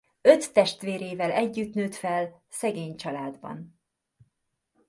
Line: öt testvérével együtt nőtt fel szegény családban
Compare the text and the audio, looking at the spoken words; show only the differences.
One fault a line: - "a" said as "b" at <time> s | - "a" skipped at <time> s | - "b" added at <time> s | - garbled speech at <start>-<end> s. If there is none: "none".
none